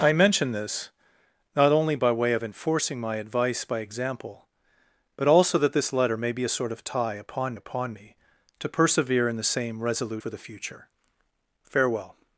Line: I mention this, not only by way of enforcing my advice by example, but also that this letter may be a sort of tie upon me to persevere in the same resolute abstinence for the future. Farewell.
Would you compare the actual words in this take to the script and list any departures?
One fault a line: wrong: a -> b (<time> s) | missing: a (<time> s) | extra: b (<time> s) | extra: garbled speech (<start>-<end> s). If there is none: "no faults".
extra: upon (7.5 s)
missing: abstinence (10.2 s)